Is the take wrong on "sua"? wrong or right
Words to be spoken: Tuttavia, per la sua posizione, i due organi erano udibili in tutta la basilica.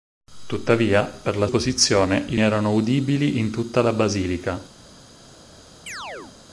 wrong